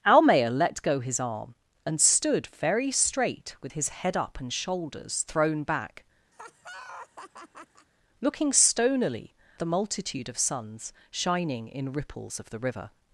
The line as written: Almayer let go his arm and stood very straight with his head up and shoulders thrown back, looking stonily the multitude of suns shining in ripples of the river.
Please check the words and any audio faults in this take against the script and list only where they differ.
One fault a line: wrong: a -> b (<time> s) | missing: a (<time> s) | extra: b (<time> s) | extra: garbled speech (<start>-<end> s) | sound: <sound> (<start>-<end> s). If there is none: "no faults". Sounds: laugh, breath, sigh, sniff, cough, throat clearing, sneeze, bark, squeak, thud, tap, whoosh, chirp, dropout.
sound: laugh (6.3-7.9 s)